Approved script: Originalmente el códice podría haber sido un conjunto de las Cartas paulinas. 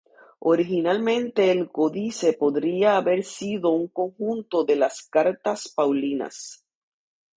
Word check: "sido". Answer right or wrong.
right